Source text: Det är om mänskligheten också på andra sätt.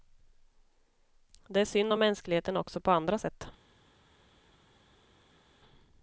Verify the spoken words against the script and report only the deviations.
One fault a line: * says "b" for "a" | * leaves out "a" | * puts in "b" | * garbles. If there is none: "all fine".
* puts in "synd"